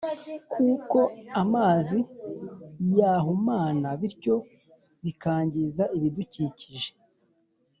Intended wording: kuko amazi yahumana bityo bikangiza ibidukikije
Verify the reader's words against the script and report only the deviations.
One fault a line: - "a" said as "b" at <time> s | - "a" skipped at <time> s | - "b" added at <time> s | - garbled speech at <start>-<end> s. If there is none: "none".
none